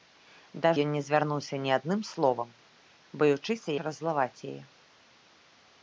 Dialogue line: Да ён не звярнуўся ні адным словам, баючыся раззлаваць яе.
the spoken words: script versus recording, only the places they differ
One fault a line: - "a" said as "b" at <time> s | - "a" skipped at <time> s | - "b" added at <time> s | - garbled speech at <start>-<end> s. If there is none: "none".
none